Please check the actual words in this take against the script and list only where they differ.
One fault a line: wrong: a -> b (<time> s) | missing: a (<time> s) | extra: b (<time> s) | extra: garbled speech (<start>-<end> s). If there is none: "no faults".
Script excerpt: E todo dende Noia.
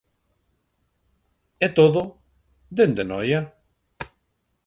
no faults